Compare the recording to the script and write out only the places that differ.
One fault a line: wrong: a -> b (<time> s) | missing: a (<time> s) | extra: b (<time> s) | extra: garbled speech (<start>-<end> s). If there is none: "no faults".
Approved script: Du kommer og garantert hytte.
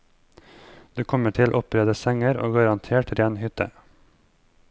extra: til oppredde senger (1.4 s)
extra: ren (3.2 s)